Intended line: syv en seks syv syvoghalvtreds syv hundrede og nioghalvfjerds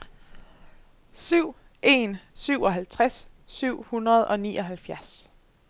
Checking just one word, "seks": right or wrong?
wrong